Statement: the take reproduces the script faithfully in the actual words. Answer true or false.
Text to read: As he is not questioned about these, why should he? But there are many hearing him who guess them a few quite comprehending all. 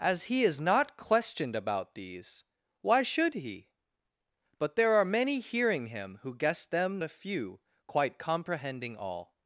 true